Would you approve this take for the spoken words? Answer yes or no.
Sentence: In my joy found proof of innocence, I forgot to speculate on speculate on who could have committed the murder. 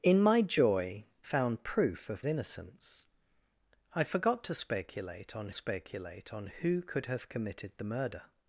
yes